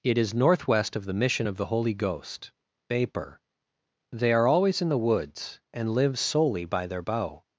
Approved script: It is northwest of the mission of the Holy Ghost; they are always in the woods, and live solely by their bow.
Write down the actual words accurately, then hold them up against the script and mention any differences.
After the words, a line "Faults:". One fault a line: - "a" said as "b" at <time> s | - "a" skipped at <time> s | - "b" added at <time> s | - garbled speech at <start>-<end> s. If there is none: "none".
It is northwest of the mission of the Holy Ghost; vapor they are always in the woods, and live solely by their bow.
Faults:
- "vapor" added at 2.9 s